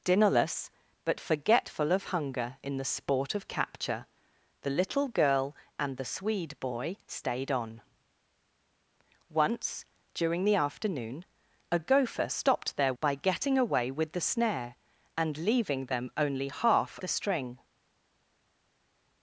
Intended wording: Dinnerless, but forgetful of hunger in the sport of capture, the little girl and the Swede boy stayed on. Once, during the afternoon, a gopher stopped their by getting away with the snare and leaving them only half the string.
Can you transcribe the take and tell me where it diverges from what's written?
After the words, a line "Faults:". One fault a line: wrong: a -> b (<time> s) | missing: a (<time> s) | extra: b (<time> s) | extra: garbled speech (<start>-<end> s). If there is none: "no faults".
Dinnerless, but forgetful of hunger in the sport of capture, the little girl and the Swede boy stayed on. Once, during the afternoon, a gopher stopped their by getting away with the snare and leaving them only half the string.
Faults:
no faults